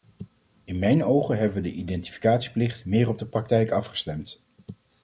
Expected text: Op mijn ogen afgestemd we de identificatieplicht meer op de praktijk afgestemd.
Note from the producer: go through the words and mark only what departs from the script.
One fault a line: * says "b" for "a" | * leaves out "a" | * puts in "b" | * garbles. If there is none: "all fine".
* says "In" for "Op"
* says "hebben" for "afgestemd"